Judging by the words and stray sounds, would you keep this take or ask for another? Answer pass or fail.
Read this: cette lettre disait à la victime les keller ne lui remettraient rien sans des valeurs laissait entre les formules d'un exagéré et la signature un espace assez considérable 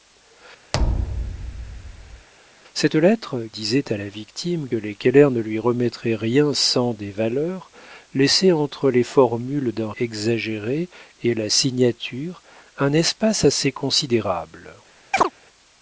fail